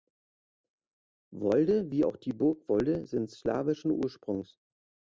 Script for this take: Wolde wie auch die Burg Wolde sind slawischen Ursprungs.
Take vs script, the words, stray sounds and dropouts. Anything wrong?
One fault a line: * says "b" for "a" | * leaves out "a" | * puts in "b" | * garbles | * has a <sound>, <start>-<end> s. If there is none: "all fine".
all fine